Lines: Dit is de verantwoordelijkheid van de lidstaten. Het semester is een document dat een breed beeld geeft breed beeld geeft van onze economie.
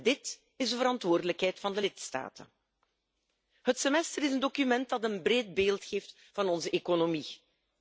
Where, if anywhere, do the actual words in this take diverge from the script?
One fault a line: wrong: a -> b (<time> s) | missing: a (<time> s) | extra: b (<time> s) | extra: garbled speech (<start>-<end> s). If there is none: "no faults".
missing: breed beeld geeft (6.2 s)